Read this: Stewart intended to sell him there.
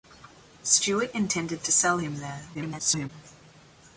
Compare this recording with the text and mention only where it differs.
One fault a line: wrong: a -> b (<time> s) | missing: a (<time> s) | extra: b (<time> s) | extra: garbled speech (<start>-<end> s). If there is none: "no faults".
extra: garbled speech (2.5-3.1 s)